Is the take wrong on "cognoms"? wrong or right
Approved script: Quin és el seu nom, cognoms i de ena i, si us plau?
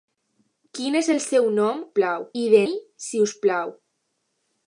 wrong